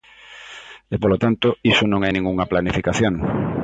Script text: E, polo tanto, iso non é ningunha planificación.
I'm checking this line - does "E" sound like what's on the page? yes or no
yes